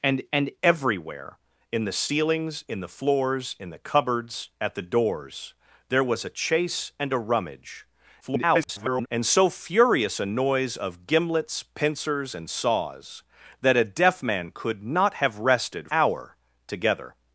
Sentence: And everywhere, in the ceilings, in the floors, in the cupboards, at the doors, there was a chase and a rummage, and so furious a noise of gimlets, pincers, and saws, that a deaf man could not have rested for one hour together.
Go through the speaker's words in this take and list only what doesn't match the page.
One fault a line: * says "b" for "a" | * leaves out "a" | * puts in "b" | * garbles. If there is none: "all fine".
* puts in "and"
* garbles
* leaves out "for one"